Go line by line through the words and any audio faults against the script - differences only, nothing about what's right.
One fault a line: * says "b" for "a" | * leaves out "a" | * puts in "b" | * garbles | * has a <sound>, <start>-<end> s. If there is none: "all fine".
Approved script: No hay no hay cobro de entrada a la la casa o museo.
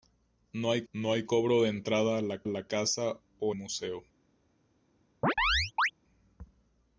* has a chirp, 5.2-5.9 s